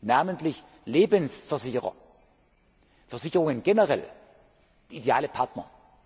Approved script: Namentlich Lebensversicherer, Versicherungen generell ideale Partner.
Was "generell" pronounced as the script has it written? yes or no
yes